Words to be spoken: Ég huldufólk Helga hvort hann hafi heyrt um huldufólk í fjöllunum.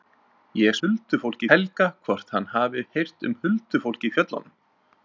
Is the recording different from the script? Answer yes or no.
no